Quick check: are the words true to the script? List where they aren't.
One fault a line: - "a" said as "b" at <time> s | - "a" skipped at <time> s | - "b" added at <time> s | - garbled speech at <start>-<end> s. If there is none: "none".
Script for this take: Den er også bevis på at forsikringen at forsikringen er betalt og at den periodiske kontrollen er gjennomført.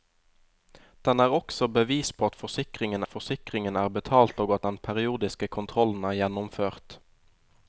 none